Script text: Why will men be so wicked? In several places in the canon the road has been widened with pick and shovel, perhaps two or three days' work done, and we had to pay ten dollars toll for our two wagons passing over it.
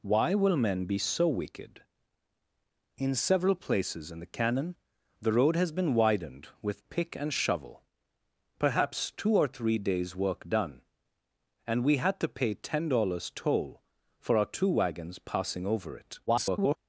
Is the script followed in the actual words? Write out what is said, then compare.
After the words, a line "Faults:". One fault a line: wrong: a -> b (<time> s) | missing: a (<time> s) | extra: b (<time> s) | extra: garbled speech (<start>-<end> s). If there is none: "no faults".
Why will men be so wicked? In several places in the canon the road has been widened with pick and shovel, perhaps two or three days' work done, and we had to pay ten dollars toll for our two wagons passing over it. [garbled]
Faults:
extra: garbled speech (16.3-16.8 s)